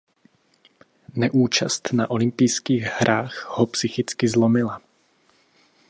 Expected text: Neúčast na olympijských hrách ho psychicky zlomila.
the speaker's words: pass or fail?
pass